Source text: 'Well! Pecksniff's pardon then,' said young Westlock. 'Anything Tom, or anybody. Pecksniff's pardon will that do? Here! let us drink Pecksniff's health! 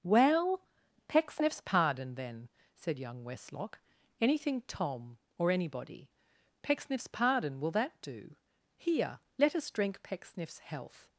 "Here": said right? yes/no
yes